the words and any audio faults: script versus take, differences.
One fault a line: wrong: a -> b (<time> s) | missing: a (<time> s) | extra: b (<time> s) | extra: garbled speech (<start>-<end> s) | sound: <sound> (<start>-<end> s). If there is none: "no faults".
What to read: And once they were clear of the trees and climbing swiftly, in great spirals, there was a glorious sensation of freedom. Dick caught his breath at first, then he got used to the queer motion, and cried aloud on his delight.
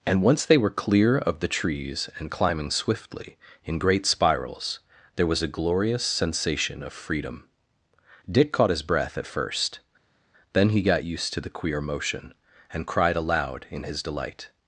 wrong: on -> in (13.7 s)